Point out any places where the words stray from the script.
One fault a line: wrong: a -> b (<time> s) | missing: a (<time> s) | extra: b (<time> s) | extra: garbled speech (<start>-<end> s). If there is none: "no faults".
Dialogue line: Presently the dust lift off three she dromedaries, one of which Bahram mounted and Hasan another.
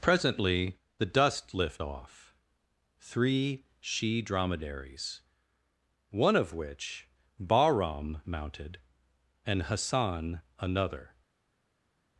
no faults